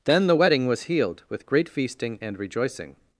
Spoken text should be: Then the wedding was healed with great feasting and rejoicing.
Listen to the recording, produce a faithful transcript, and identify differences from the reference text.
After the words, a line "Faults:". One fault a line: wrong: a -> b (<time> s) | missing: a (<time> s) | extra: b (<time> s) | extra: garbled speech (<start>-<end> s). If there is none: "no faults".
Then the wedding was healed with great feasting and rejoicing.
Faults:
no faults